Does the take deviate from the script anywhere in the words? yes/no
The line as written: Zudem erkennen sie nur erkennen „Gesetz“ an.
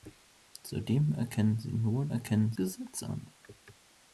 no